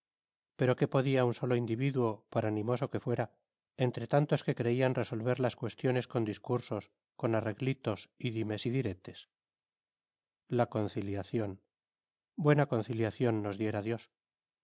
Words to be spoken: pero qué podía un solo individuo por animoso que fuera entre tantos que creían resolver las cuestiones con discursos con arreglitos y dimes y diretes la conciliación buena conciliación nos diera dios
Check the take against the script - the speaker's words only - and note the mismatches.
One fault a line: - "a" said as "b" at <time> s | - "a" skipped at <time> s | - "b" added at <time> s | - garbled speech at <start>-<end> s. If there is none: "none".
none